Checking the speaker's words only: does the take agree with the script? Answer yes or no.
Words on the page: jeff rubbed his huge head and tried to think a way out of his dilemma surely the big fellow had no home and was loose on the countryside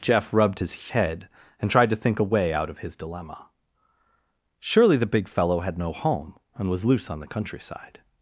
no